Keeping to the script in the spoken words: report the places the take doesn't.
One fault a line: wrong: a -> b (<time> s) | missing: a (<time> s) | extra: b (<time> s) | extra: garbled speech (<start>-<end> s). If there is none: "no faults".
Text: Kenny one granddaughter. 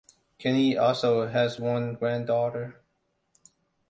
extra: also has (0.8 s)